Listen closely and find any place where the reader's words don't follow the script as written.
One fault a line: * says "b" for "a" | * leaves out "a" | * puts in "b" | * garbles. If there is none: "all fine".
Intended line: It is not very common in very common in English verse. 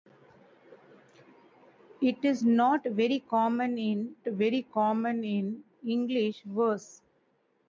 all fine